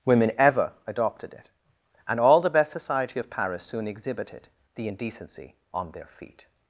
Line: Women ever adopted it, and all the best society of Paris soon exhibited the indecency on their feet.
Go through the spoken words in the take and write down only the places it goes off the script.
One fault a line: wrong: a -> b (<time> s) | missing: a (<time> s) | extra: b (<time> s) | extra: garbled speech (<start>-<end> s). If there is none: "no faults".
no faults